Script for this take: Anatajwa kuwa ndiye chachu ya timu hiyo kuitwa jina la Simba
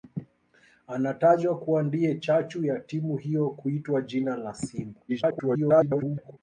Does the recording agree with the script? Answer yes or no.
no